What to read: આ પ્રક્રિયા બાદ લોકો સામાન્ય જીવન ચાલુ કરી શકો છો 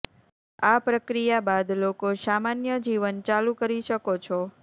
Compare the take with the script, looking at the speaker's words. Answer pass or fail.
pass